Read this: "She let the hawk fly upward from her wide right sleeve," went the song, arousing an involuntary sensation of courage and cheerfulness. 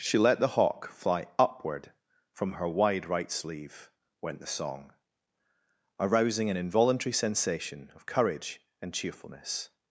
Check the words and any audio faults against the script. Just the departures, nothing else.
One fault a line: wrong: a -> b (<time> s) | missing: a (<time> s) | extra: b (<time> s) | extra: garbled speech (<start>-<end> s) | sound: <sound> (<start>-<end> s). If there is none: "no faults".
no faults